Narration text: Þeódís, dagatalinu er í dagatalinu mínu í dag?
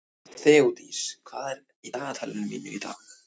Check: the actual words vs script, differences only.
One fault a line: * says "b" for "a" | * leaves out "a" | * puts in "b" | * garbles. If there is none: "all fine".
* says "hvað" for "dagatalinu"